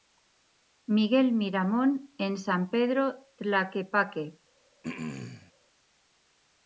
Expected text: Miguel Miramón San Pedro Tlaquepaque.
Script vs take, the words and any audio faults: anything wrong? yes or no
yes